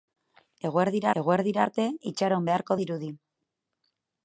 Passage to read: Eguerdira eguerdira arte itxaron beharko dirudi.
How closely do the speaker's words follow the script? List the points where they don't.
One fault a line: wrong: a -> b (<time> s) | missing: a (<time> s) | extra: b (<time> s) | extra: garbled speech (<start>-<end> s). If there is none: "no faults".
no faults